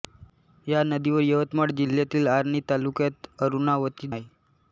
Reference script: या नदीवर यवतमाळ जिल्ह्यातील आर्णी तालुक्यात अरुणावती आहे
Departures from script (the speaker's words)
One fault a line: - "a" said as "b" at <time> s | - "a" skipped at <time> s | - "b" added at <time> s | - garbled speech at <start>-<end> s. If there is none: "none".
none